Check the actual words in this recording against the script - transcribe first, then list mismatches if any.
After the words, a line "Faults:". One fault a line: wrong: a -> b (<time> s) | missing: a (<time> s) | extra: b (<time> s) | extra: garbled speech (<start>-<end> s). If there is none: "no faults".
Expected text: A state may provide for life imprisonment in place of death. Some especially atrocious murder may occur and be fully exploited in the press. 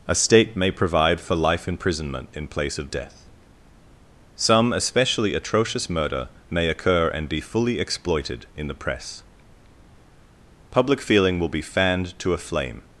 A state may provide for life imprisonment in place of death. Some especially atrocious murder may occur and be fully exploited in the press. Public feeling will be fanned to a flame
Faults:
extra: Public feeling will be fanned to a flame (10.7 s)